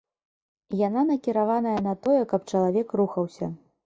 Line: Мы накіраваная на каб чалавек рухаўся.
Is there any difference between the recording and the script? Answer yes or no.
yes